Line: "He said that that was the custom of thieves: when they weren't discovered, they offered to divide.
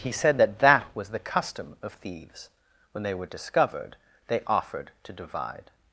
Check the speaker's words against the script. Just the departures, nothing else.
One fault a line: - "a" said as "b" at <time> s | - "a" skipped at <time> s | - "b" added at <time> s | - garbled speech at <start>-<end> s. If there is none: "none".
- "weren't" said as "were" at 3.1 s